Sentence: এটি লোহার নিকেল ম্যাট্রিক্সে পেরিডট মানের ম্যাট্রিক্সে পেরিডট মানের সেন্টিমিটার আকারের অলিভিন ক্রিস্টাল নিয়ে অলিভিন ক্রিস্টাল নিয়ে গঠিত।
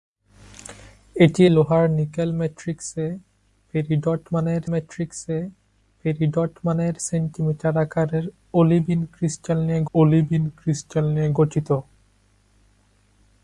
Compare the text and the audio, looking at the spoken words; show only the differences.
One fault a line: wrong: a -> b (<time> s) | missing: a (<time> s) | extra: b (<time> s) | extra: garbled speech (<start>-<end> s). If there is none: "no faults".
no faults